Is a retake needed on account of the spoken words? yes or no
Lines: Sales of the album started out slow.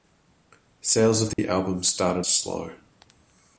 yes